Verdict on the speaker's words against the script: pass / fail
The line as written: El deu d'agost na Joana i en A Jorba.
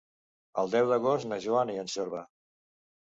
pass